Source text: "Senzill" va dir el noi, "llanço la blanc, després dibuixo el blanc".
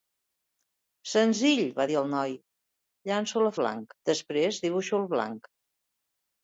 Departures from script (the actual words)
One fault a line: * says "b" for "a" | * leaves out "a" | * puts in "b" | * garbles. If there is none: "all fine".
all fine